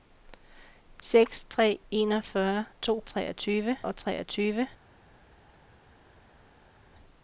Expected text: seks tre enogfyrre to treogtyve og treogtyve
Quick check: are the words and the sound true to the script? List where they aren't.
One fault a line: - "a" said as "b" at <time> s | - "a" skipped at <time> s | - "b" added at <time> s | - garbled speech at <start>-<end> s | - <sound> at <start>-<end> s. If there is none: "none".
none